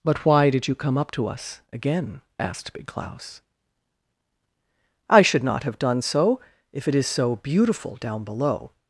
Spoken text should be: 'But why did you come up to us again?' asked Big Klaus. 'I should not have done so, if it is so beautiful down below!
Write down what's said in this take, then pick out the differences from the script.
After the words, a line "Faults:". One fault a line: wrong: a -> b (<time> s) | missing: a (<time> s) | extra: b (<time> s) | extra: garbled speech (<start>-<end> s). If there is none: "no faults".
'But why did you come up to us again?' asked Big Klaus. 'I should not have done so, if it is so beautiful down below!
Faults:
no faults